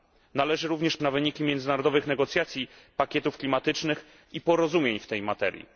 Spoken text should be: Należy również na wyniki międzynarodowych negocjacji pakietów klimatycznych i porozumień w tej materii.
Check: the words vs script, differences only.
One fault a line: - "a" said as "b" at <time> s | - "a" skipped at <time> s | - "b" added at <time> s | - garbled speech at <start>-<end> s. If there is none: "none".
none